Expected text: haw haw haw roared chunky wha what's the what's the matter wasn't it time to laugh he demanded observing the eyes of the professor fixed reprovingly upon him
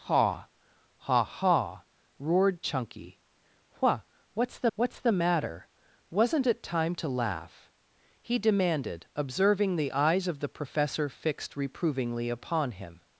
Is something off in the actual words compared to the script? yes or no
no